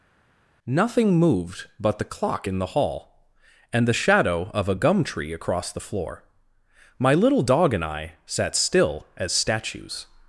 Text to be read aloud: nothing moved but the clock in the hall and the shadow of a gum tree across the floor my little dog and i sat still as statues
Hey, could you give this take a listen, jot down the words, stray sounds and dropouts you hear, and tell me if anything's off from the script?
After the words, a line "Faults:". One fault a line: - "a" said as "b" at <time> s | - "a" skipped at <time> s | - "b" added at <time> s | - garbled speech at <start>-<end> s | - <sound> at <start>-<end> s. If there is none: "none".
nothing moved but the clock in the hall and the shadow of a gum tree across the floor my little dog and i sat still as statues
Faults:
none